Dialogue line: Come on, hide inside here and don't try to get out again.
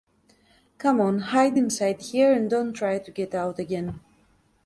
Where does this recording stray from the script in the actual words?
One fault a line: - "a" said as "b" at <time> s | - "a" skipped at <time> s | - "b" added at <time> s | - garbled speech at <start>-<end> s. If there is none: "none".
none